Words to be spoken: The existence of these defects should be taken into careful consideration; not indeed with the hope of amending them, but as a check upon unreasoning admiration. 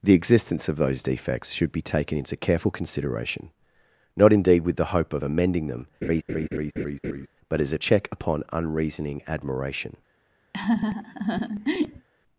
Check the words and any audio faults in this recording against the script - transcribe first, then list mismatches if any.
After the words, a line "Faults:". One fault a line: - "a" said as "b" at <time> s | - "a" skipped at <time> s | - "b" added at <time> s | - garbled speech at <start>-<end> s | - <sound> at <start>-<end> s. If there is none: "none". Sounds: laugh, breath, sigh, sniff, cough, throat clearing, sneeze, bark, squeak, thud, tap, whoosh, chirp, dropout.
The existence of those defects should be taken into careful consideration; not indeed with the hope of amending them, but as a check upon unreasoning admiration.
Faults:
- "these" said as "those" at 0.8 s
- laugh at 6.0-7.3 s
- laugh at 10.5-12.1 s